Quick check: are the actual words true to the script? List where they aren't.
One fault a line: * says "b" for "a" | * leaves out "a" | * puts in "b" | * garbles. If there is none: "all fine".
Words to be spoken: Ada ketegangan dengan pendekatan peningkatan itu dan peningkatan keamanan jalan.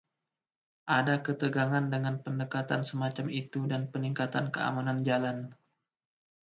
* says "semacam" for "peningkatan"